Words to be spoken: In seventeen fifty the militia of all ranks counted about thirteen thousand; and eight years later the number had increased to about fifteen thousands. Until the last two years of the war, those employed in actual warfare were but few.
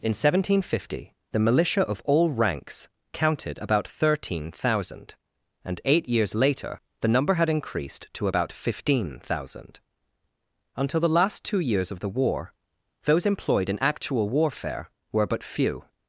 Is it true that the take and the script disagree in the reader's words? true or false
true